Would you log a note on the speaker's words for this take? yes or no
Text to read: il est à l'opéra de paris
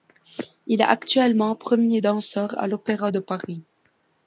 yes